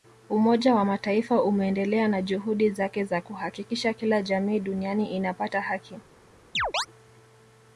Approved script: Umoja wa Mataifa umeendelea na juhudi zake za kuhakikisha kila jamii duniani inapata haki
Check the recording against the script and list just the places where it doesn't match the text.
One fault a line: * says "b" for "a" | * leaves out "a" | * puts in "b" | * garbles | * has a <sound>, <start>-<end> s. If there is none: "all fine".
* has a chirp, 6.5-6.9 s